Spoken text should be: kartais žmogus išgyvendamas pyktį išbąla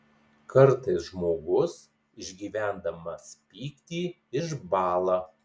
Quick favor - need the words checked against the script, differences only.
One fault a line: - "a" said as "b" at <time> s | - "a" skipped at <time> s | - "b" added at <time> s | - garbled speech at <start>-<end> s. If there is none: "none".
none